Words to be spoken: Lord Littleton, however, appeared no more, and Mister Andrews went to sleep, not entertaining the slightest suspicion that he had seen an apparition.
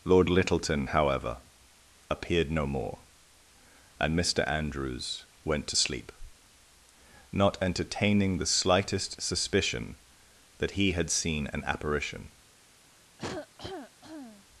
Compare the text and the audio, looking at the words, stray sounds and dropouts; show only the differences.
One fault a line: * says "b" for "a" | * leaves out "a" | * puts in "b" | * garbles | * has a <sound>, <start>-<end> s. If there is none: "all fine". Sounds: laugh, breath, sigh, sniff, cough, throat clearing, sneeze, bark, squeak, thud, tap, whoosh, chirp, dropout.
* has a cough, 13.2-14.4 s